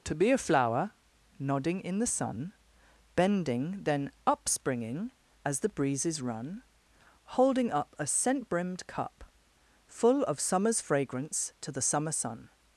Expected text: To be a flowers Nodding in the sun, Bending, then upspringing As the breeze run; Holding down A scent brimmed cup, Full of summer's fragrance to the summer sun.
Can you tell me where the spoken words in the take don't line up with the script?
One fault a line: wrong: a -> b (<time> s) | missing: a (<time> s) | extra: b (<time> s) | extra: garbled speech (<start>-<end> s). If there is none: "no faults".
wrong: flowers -> flower (0.4 s)
wrong: breeze -> breezes (5.7 s)
wrong: down -> up (7.7 s)